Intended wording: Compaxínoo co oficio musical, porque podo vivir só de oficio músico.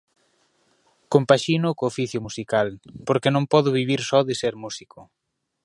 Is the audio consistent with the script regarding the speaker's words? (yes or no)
no